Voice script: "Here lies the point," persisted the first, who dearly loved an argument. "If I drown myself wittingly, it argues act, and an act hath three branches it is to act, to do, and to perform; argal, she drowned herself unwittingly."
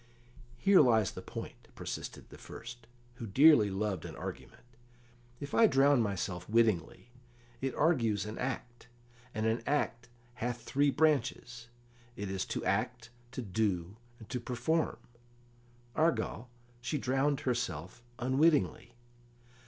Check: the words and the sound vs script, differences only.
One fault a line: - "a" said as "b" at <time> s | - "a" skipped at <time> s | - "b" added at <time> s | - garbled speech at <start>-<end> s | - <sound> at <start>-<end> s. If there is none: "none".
- "an" added at 8.2 s